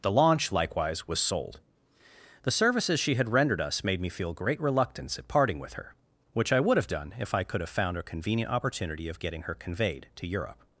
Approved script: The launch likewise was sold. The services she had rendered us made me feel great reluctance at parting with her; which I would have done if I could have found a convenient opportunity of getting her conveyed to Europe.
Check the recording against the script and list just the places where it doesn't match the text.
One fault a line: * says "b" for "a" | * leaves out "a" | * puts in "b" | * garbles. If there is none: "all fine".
all fine